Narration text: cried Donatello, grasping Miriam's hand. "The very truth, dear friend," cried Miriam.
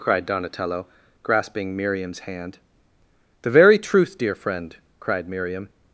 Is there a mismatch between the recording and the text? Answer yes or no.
no